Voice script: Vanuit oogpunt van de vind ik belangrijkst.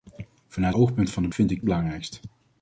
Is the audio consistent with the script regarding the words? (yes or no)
yes